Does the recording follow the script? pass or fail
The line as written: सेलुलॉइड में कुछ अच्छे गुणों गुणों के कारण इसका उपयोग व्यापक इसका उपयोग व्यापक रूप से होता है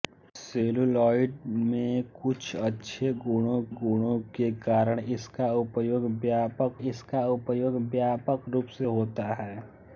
pass